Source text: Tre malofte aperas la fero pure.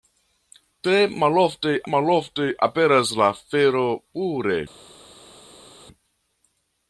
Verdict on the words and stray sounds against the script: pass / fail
fail